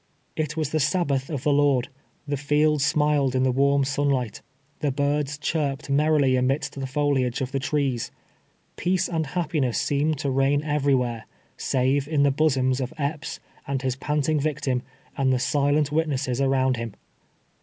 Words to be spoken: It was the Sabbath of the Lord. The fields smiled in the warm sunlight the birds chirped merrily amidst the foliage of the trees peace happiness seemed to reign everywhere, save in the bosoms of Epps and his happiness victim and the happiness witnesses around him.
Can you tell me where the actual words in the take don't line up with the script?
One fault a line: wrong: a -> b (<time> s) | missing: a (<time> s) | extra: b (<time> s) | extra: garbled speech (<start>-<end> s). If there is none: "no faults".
extra: and (9.1 s)
wrong: happiness -> panting (13.9 s)
wrong: happiness -> silent (15.4 s)